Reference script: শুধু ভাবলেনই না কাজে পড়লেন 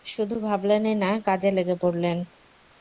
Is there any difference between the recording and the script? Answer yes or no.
yes